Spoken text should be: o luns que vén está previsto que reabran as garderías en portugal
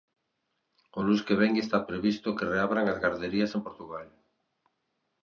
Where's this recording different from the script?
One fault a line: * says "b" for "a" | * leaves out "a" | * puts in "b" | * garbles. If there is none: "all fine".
all fine